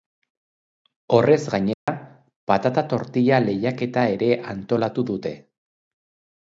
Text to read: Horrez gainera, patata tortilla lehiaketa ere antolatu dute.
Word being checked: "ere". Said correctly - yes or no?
yes